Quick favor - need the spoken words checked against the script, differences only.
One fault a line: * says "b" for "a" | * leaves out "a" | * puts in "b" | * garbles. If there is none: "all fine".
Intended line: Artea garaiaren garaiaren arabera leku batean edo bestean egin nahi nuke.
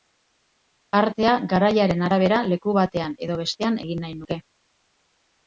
* leaves out "garaiaren"